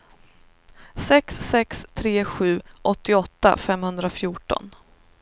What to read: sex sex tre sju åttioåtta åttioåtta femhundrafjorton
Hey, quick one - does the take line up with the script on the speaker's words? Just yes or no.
no